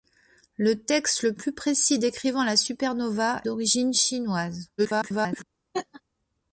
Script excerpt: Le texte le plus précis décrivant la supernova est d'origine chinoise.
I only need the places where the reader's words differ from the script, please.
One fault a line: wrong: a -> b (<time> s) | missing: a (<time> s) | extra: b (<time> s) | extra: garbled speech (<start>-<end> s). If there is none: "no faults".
missing: est (3.4 s)
extra: garbled speech (4.8-5.4 s)